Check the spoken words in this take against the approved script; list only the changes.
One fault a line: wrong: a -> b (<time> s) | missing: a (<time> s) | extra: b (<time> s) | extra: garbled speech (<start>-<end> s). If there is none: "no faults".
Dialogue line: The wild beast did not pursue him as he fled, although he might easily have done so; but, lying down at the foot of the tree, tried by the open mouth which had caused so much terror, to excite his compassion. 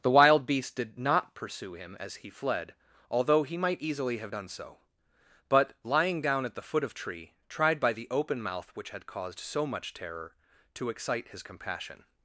missing: the (6.9 s)